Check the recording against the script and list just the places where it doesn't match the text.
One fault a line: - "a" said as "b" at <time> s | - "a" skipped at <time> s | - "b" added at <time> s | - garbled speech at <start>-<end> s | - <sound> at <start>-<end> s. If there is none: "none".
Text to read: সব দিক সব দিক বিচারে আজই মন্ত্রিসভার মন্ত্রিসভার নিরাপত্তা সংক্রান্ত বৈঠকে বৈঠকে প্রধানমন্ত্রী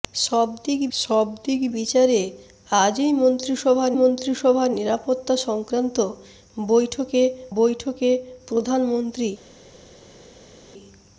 none